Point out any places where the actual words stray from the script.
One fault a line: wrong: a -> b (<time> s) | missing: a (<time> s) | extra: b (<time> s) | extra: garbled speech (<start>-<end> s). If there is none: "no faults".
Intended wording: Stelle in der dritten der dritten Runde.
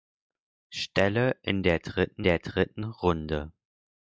no faults